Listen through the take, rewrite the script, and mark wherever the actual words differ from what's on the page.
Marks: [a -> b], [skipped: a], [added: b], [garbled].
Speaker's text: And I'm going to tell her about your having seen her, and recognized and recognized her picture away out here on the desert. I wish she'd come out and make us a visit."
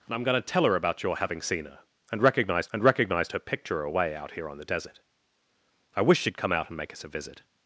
And I'm going to tell her about your having seen her, and recognized and recognized her picture away out here on the desert. I wish she'd come out and make us a visit."